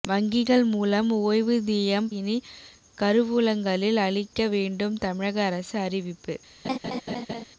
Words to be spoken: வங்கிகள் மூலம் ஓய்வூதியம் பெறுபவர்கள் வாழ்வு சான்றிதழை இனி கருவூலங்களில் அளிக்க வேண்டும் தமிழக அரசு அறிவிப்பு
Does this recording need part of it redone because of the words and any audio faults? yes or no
yes